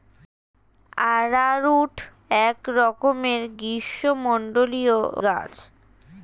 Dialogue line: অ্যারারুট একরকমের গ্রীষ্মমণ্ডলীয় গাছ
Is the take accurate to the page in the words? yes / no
yes